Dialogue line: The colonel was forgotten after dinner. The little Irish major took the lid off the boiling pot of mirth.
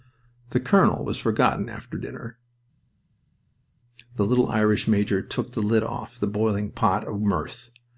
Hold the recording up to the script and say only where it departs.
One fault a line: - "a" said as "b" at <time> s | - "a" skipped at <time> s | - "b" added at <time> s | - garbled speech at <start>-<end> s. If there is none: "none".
none